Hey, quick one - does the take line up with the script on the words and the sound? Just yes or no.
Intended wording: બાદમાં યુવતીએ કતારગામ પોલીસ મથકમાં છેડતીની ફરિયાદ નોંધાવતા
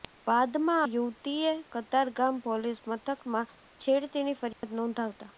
no